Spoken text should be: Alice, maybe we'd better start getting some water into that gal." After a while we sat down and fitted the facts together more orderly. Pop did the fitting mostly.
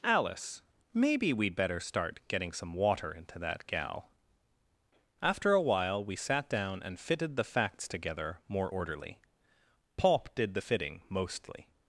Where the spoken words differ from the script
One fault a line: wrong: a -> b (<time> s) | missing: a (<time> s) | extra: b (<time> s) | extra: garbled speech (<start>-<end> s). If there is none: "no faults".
no faults